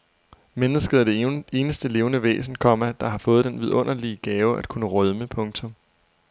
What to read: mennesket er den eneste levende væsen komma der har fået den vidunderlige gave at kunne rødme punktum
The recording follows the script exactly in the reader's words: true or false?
false